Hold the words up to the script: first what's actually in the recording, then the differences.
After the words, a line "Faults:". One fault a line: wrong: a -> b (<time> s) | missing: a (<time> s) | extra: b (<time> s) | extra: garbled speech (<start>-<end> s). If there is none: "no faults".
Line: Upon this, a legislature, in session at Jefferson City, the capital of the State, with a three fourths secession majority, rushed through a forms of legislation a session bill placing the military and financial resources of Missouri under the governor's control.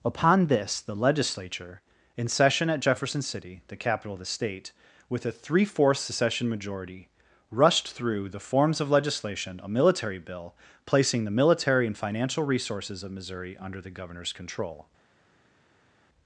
Upon this, the legislature, in session at Jefferson City, the capital of the State, with a three fourths secession majority, rushed through the forms of legislation a military bill placing the military and financial resources of Missouri under the governor's control.
Faults:
wrong: a -> the (0.8 s)
wrong: a -> the (8.3 s)
wrong: session -> military (9.7 s)